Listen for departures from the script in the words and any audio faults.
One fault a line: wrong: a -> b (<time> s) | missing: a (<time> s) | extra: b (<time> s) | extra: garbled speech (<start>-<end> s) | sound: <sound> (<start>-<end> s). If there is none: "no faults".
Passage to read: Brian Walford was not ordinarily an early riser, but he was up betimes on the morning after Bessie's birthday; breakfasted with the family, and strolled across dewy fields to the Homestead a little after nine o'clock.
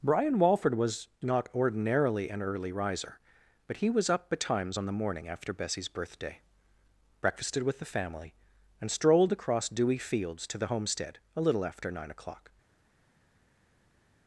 no faults